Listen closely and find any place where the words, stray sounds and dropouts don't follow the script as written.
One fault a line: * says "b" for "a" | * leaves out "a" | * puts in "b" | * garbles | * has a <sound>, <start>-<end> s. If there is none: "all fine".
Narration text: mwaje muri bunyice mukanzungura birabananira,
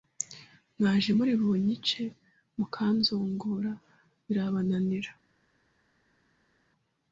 all fine